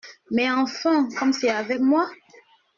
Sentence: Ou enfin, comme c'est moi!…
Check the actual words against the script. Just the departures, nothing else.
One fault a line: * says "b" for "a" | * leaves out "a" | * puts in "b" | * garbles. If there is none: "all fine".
* says "Mais" for "Ou"
* puts in "avec"